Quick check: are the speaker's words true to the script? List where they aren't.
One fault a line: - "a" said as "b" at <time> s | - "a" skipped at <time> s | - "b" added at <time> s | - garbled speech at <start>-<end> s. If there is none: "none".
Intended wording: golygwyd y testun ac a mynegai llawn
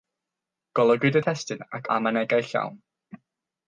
none